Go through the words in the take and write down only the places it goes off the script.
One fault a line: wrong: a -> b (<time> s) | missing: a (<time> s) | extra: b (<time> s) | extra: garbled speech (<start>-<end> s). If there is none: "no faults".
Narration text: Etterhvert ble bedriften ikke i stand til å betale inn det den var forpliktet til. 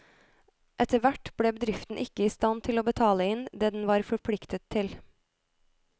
no faults